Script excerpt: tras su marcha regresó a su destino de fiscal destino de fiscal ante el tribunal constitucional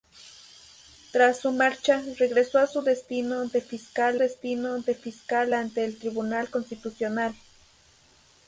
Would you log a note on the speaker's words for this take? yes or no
no